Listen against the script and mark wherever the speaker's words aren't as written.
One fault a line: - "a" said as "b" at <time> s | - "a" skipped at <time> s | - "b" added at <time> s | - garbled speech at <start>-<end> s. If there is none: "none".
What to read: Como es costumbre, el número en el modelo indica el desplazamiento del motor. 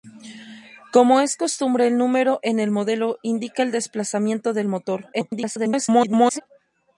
- garbled speech at 5.1-6.4 s